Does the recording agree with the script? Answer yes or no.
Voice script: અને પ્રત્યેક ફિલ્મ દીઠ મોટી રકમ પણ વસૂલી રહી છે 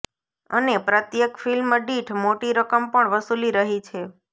yes